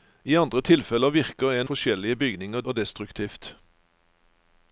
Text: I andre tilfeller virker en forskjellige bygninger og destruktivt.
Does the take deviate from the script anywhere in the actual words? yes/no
no